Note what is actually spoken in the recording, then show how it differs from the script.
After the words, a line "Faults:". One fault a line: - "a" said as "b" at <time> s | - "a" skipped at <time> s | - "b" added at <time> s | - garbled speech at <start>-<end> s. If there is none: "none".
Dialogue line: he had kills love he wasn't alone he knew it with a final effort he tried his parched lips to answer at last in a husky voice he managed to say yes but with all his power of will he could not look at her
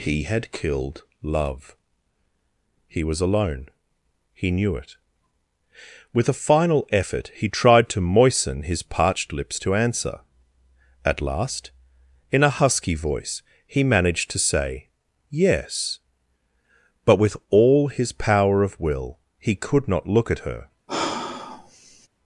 he had killed love he was alone he knew it with a final effort he tried to moisten his parched lips to answer at last in a husky voice he managed to say yes but with all his power of will he could not look at her
Faults:
- "kills" said as "killed" at 0.5 s
- "wasn't" said as "was" at 3.0 s
- "to moisten" added at 7.9 s